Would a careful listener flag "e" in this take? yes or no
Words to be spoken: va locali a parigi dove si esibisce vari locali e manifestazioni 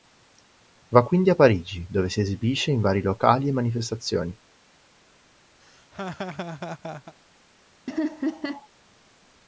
no